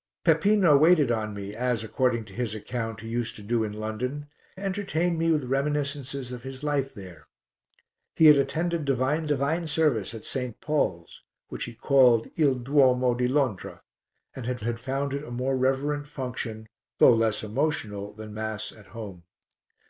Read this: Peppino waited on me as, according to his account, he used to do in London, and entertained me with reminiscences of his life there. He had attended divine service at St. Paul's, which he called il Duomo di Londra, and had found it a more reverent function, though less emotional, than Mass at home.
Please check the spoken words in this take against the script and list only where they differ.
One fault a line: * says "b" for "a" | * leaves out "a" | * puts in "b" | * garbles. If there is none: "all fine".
* leaves out "and"
* puts in "divine"
* puts in "had"